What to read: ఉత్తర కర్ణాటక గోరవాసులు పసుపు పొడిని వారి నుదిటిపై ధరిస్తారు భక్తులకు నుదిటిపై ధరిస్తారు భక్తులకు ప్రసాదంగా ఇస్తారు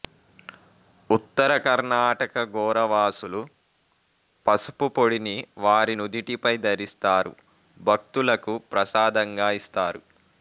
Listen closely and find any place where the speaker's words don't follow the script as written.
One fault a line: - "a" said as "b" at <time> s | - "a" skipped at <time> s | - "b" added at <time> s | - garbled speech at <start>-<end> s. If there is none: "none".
- "నుదిటిపై ధరిస్తారు భక్తులకు" skipped at 8.5 s